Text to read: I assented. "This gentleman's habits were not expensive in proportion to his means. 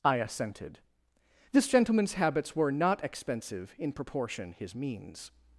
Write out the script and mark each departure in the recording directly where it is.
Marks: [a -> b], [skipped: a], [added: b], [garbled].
I assented. "This gentleman's habits were not expensive in proportion [skipped: to] his means.